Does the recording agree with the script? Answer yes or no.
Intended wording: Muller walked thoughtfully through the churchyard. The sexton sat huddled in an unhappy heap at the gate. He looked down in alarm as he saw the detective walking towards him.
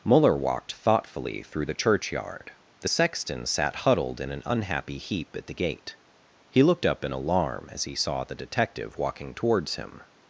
no